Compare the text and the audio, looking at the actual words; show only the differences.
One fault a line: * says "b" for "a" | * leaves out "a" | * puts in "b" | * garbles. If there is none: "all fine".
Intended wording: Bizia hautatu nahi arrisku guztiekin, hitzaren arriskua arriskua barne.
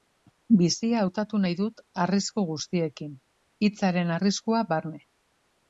* puts in "dut"
* leaves out "arriskua"